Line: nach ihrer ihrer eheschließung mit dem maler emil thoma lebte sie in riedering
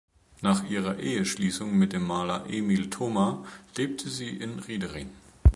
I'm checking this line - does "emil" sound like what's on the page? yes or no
yes